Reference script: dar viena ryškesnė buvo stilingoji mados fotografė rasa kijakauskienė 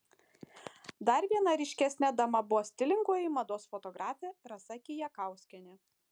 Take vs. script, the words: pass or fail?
fail